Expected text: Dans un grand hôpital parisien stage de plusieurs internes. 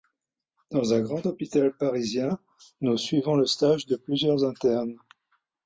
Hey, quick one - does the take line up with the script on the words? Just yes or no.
no